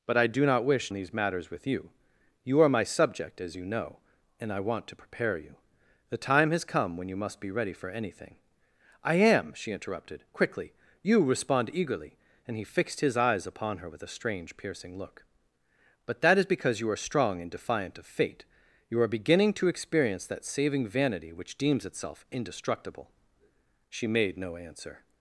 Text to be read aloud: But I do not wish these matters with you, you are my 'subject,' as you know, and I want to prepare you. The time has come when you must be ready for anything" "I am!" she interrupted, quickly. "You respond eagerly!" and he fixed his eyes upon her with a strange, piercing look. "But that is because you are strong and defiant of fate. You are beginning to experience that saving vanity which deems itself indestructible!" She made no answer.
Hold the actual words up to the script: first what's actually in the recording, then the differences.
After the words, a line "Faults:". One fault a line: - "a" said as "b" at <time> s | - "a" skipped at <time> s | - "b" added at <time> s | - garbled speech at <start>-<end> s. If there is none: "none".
But I do not wish these matters with you, you are my 'subject,' as you know, and I want to prepare you. The time has come when you must be ready for anything" "I am!" she interrupted, quickly. "You respond eagerly!" and he fixed his eyes upon her with a strange, piercing look. "But that is because you are strong and defiant of fate. You are beginning to experience that saving vanity which deems itself indestructible!" She made no answer.
Faults:
none